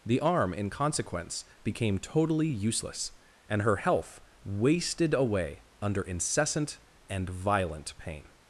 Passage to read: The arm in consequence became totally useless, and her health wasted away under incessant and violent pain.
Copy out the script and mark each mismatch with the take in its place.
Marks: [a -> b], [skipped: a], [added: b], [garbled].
The arm in consequence became totally useless, and her health wasted away under incessant and violent pain.